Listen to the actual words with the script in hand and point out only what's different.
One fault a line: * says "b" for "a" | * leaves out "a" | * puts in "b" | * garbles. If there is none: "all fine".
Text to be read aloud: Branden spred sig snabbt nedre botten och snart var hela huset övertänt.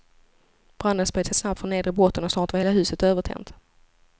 * puts in "från"